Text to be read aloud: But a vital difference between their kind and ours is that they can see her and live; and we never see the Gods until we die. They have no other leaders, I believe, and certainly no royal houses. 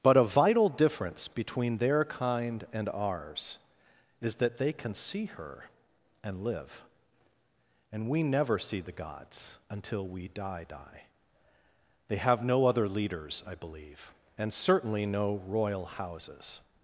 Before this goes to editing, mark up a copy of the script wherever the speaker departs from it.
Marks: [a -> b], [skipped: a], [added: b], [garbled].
But a vital difference between their kind and ours is that they can see her and live; and we never see the Gods until we die. [added: die] They have no other leaders, I believe, and certainly no royal houses.